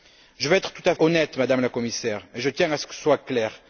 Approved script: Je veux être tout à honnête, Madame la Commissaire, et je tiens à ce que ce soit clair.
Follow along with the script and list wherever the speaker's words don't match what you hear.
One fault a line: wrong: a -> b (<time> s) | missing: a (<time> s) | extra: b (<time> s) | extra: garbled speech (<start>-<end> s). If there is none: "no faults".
no faults